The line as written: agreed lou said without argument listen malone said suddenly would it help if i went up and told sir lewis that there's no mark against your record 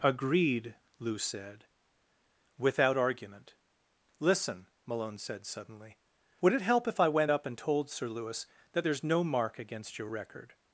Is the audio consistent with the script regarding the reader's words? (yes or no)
yes